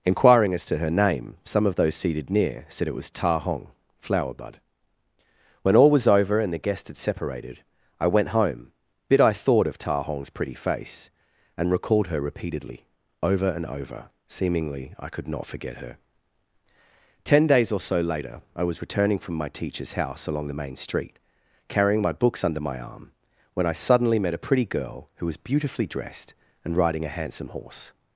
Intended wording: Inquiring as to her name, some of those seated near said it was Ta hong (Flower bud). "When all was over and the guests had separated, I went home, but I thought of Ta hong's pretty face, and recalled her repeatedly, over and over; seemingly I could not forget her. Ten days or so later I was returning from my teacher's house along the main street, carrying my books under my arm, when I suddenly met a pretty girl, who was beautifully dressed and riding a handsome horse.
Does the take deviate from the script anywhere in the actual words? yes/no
yes